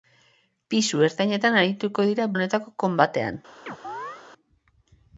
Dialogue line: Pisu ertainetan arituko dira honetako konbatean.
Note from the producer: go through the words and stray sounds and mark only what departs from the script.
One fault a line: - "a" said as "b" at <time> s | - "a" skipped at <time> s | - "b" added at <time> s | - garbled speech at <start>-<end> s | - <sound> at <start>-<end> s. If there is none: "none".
- chirp at 3.7-4.2 s